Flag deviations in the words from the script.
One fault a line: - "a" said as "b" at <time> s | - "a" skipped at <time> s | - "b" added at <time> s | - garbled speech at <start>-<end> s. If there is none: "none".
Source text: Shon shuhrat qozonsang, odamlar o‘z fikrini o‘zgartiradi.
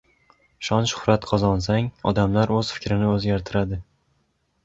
none